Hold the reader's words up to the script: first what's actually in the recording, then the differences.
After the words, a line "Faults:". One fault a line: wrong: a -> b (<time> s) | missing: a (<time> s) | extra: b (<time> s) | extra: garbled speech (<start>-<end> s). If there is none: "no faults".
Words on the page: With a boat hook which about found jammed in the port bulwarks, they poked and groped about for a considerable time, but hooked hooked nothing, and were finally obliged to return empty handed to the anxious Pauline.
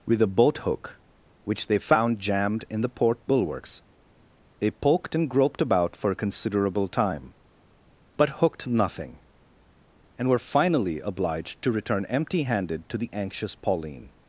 With a boat hook which they found jammed in the port bulwarks, they poked and groped about for a considerable time, but hooked nothing, and were finally obliged to return empty handed to the anxious Pauline.
Faults:
wrong: about -> they (1.7 s)
missing: hooked (8.7 s)